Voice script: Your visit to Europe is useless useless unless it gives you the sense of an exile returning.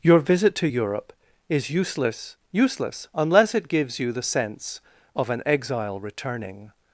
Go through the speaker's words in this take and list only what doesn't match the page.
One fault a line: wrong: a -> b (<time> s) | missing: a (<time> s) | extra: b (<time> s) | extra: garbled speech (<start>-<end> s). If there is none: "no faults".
no faults